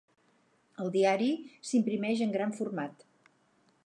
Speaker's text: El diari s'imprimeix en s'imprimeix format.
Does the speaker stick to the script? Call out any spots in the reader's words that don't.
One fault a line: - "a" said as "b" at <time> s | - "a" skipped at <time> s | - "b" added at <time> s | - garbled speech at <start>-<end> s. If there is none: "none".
- "s'imprimeix" said as "gran" at 2.4 s